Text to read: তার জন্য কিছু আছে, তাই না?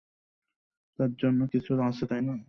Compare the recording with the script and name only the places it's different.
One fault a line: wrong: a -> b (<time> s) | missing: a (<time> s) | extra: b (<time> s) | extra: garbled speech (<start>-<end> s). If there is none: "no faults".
no faults